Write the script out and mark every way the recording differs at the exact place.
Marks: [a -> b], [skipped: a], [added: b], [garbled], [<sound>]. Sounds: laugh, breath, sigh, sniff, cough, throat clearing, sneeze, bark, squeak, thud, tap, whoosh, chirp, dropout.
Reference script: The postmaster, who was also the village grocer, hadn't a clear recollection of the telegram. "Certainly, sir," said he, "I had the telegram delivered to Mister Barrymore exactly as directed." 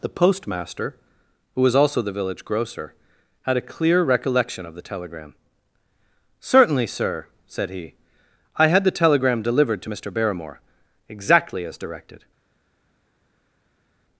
The postmaster, who was also the village grocer, [hadn't -> had] a clear recollection of the telegram. "Certainly, sir," said he, "I had the telegram delivered to Mister Barrymore exactly as directed."